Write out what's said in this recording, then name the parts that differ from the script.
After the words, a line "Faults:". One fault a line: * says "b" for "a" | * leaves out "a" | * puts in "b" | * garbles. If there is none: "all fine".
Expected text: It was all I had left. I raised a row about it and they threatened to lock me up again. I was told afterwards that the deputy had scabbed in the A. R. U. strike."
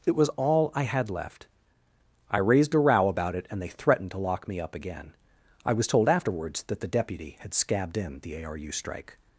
It was all I had left. I raised a row about it and they threatened to lock me up again. I was told afterwards that the deputy had scabbed in the A. R. U. strike."
Faults:
all fine